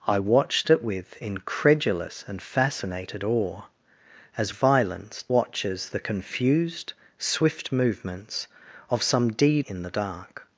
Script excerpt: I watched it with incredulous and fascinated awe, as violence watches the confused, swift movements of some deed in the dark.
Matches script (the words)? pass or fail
pass